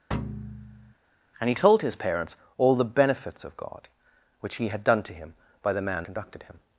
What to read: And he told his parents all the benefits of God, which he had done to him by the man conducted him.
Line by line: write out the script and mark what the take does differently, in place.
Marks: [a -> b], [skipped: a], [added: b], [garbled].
And he told his parents all the benefits of God, which he had done to him by the man conducted him.